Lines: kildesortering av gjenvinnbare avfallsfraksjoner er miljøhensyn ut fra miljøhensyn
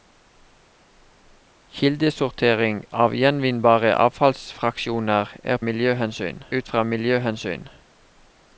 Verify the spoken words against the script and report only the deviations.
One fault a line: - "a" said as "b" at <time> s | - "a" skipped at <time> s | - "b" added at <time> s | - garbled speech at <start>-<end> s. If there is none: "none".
none